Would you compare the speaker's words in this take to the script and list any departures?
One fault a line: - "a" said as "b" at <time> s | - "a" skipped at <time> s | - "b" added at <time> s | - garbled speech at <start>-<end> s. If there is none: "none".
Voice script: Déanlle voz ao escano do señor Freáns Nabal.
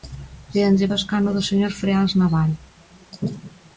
- "voz" skipped at 0.9 s